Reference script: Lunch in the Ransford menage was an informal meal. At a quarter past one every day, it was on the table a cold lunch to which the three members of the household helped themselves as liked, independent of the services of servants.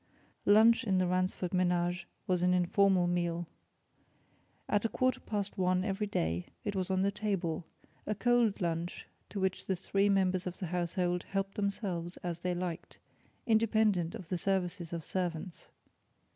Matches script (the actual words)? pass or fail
fail